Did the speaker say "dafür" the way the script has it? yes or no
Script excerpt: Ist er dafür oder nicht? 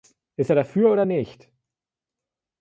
yes